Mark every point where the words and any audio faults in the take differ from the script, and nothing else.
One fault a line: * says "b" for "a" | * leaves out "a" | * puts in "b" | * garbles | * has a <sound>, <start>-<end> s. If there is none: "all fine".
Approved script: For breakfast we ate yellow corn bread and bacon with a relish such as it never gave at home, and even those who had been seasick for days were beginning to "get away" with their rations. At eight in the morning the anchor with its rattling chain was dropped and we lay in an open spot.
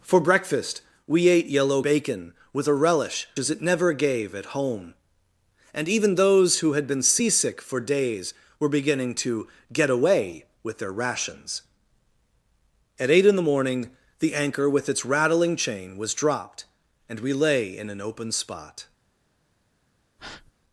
* leaves out "corn bread and"
* leaves out "such"
* has a breath, 20.2-20.5 s